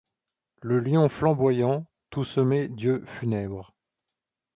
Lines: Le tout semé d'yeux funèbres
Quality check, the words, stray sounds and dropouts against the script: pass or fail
fail